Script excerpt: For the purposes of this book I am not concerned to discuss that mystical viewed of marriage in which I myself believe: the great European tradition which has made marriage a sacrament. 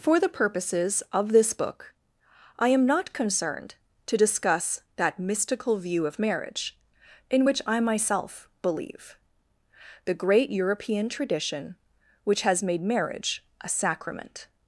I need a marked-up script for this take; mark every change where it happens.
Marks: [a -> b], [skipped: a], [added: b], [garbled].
For the purposes of this book I am not concerned to discuss that mystical [viewed -> view] of marriage in which I myself believe: the great European tradition which has made marriage a sacrament.